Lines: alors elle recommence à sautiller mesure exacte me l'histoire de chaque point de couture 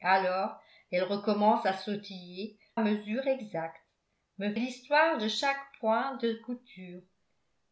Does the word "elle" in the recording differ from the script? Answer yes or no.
no